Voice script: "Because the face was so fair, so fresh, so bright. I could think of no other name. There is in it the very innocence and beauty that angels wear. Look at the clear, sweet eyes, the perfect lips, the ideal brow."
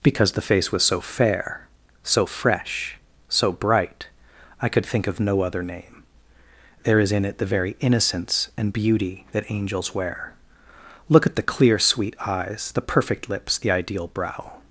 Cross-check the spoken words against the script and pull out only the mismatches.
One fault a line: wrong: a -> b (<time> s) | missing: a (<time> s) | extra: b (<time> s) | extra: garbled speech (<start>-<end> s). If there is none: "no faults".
no faults